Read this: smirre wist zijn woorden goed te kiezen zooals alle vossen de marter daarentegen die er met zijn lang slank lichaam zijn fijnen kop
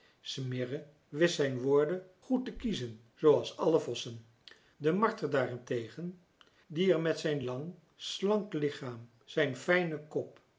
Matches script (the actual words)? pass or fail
pass